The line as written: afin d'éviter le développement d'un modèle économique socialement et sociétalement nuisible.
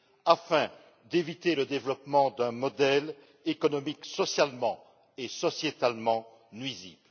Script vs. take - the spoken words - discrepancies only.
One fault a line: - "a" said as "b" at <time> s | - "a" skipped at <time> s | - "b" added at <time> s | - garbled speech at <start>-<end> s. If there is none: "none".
none